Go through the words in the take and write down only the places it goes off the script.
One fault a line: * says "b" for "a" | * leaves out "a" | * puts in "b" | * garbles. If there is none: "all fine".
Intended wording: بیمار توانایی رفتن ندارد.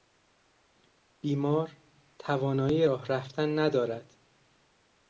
* puts in "راه"